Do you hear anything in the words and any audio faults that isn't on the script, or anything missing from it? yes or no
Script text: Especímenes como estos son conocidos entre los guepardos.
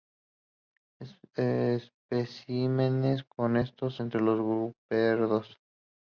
yes